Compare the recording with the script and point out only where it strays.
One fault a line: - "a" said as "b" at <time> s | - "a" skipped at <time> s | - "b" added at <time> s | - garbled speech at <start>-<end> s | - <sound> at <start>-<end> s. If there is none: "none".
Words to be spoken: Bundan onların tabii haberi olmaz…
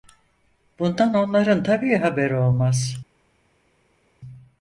none